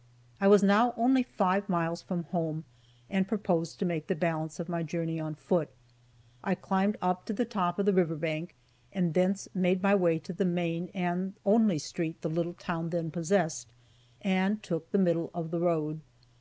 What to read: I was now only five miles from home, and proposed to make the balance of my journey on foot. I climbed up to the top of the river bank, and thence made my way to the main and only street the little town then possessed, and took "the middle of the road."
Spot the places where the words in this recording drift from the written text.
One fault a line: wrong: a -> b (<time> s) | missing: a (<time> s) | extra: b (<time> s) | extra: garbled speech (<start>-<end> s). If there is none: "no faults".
no faults